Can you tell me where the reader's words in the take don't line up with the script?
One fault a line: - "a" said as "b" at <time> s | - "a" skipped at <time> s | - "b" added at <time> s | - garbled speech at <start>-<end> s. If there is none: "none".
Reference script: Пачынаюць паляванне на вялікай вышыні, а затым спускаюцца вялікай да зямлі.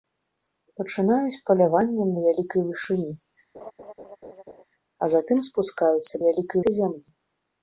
none